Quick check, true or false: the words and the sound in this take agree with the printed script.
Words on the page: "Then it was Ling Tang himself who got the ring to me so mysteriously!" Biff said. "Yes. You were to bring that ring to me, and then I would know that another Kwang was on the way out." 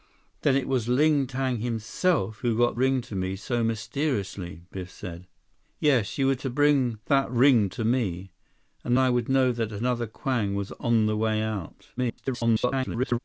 false